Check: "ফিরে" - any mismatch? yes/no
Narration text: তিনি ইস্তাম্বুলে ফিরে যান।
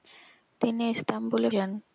yes